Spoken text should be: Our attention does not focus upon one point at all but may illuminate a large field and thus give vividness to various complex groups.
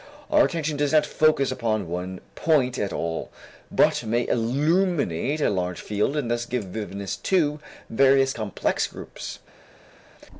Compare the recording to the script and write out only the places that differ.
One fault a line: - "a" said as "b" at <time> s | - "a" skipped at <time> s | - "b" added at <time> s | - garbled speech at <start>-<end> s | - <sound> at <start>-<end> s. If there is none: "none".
none